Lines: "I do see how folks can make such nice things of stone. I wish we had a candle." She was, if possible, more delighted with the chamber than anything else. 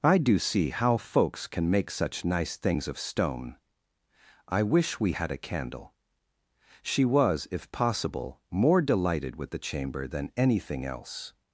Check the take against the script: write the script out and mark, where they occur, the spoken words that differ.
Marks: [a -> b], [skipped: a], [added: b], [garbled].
"I do see how folks can make such nice things of stone. I wish we had a candle." She was, if possible, more delighted with the chamber than anything else.